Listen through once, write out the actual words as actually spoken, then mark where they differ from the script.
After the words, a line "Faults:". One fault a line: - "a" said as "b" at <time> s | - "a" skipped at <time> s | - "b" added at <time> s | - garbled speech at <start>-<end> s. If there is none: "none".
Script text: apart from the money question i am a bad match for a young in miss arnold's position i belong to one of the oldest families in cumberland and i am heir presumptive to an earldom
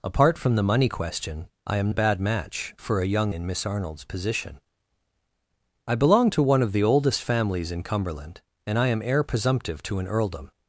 apart from the money question i am a bad match for a young in miss arnold's position i belong to one of the oldest families in cumberland and i am heir presumptive to an earldom
Faults:
none